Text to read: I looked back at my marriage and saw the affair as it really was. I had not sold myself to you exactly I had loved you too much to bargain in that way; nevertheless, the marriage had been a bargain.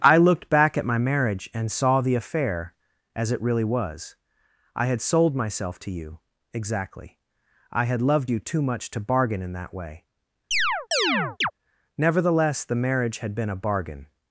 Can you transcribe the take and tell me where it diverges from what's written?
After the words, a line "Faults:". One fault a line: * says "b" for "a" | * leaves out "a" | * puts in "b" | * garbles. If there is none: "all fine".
I looked back at my marriage and saw the affair as it really was. I had sold myself to you exactly I had loved you too much to bargain in that way; nevertheless, the marriage had been a bargain.
Faults:
* leaves out "not"